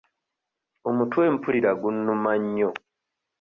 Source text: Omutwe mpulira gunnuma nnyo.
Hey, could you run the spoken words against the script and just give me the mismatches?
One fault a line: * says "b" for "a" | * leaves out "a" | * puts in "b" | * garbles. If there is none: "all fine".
all fine